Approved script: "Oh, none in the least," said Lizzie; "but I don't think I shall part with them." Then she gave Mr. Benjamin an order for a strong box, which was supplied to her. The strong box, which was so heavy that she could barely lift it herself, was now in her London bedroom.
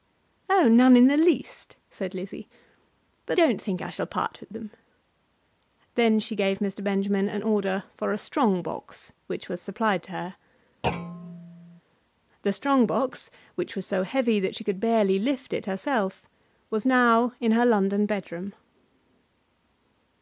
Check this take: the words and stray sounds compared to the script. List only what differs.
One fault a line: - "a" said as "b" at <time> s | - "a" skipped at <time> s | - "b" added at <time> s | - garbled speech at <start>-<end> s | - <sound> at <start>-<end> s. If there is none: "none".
- "I" skipped at 3.4 s
- thud at 10.8-11.8 s